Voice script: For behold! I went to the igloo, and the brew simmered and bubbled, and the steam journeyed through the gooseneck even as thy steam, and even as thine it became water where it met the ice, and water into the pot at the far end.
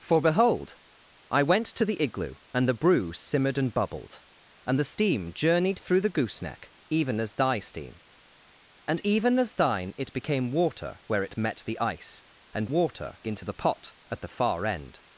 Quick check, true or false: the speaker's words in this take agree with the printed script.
true